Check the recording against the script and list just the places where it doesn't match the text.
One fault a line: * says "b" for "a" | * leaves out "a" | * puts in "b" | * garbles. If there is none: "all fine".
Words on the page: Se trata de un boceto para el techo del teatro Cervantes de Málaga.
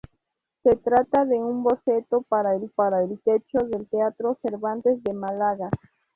* puts in "para el"